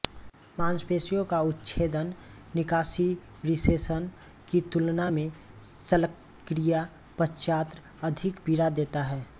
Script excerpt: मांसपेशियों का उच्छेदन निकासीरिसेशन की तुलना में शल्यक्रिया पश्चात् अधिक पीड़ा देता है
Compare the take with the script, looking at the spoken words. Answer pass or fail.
pass